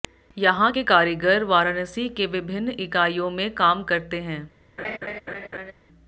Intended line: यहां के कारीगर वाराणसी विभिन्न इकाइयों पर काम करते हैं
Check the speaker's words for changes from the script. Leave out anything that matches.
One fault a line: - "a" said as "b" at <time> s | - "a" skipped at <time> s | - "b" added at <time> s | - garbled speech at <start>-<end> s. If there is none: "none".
- "के" added at 2.1 s
- "पर" said as "में" at 3.3 s